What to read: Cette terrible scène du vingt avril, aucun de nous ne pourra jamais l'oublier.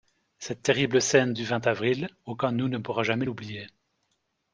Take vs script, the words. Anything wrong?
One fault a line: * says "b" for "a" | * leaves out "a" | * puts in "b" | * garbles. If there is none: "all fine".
all fine